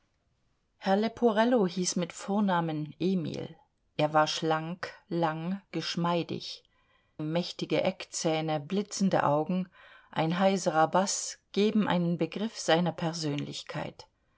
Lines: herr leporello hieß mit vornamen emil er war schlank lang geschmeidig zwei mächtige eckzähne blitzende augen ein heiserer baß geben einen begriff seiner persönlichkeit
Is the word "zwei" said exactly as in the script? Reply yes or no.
no